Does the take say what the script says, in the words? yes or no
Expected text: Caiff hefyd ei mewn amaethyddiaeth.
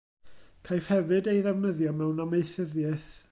no